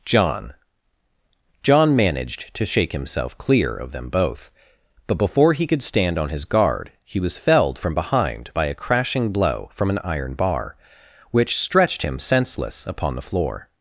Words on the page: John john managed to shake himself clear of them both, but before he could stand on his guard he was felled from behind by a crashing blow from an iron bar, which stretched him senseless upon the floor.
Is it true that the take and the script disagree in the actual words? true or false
false